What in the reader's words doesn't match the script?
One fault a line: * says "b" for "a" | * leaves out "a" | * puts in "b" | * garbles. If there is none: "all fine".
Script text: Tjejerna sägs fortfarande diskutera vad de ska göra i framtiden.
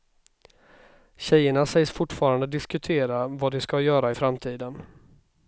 all fine